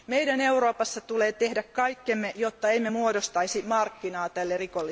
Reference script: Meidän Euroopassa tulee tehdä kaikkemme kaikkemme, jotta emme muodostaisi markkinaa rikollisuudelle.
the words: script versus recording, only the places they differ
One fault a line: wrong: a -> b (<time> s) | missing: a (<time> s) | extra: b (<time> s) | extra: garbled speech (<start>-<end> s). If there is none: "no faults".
missing: kaikkemme (2.3 s)
extra: tälle (4.3 s)